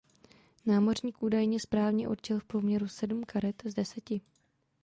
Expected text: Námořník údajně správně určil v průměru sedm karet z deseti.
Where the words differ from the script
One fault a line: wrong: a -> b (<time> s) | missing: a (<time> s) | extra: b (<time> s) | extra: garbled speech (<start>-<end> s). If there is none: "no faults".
no faults